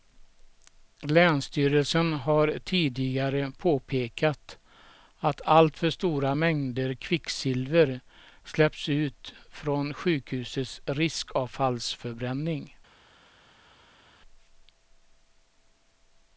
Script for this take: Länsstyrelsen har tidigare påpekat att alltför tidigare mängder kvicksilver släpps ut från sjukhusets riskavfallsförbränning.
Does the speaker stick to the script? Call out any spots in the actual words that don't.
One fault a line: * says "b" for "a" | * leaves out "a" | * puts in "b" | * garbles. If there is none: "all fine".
* says "stora" for "tidigare"